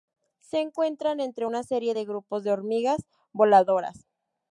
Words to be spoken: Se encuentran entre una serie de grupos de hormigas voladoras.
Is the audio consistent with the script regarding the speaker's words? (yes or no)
yes